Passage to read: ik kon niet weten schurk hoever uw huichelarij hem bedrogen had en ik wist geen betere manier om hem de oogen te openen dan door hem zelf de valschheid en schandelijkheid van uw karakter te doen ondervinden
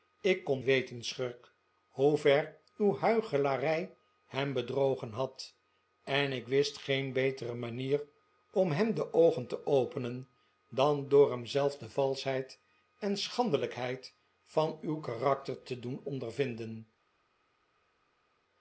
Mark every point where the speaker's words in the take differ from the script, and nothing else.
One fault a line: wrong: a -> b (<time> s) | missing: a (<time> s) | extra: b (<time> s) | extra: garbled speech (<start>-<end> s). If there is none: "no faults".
missing: niet (0.6 s)